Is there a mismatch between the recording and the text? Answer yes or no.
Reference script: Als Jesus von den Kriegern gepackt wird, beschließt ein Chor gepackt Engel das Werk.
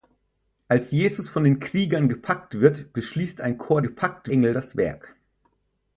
no